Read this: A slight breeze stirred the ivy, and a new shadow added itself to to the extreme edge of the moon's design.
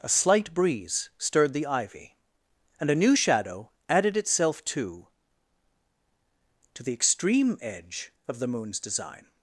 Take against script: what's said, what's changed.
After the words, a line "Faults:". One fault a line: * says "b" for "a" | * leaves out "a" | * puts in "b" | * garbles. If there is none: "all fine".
A slight breeze stirred the ivy, and a new shadow added itself to to the extreme edge of the moon's design.
Faults:
all fine